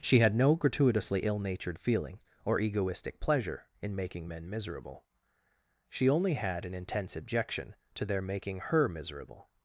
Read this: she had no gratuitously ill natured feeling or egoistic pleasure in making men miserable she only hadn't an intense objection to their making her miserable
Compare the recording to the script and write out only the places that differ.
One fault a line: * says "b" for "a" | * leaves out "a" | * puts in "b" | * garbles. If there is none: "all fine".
* says "had" for "hadn't"